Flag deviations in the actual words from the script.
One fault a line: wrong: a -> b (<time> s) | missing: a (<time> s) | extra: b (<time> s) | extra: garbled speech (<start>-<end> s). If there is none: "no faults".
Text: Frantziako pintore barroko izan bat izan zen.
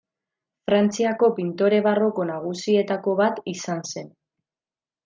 wrong: izan -> nagusietako (2.3 s)